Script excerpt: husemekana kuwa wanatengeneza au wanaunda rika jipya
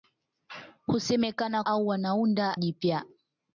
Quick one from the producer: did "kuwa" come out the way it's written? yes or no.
no